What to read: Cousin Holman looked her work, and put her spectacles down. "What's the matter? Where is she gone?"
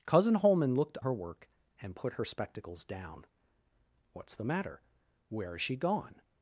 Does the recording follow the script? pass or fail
pass